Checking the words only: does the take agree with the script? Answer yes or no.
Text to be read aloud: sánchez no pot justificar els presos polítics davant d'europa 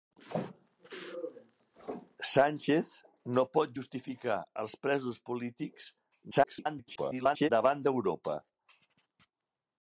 no